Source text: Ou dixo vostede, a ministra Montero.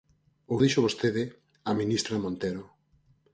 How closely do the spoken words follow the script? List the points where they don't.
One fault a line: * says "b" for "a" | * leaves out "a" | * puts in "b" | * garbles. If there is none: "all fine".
all fine